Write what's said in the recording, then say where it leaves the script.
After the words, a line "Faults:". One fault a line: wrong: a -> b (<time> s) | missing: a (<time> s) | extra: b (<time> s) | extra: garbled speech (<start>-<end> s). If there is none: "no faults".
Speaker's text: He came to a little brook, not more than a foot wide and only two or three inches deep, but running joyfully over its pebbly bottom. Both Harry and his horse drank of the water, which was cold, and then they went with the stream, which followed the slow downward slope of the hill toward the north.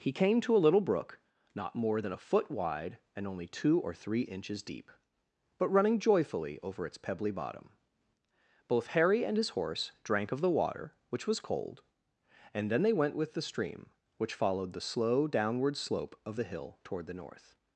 He came to a little brook, not more than a foot wide and only two or three inches deep, but running joyfully over its pebbly bottom. Both Harry and his horse drank of the water, which was cold, and then they went with the stream, which followed the slow downward slope of the hill toward the north.
Faults:
no faults